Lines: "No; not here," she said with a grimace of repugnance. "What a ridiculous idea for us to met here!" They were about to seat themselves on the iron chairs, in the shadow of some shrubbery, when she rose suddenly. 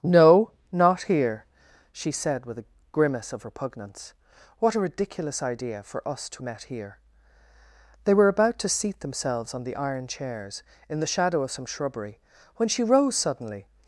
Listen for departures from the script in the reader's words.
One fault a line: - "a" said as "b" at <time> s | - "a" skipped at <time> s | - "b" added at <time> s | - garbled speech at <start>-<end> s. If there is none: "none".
none